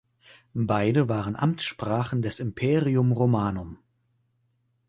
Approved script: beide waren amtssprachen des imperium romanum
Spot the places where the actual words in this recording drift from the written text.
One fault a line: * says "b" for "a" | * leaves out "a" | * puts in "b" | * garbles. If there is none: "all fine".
all fine